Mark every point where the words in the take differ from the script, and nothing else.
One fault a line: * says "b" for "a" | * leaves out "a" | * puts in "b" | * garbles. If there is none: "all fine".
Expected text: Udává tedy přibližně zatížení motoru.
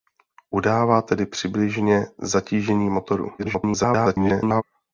* garbles